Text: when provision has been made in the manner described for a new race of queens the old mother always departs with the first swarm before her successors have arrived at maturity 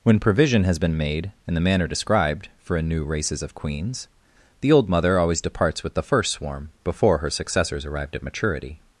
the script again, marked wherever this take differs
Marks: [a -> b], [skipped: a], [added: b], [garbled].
when provision has been made in the manner described for a new [race -> races] of queens the old mother always departs with the first swarm before her successors [skipped: have] arrived at maturity